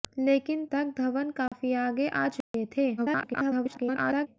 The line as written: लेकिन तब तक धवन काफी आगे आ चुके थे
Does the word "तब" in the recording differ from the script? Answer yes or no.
yes